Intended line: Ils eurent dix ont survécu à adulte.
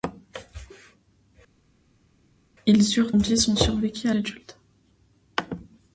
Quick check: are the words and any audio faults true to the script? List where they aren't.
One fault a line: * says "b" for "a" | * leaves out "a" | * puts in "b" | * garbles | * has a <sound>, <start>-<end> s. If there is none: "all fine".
all fine